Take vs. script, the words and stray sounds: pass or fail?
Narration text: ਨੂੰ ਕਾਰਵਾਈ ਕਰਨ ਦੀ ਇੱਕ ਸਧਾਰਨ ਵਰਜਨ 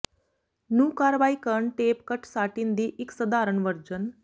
fail